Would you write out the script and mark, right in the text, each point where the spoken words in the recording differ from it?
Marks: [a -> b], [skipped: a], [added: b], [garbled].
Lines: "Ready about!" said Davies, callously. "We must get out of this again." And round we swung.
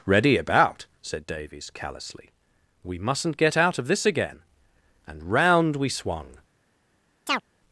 "Ready about!" said Davies, callously. "We [must -> mustn't] get out of this again." And round we swung.